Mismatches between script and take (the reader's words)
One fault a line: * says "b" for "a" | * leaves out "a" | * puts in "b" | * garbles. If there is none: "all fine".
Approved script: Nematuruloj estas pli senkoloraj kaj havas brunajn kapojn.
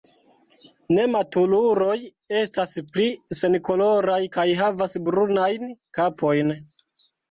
all fine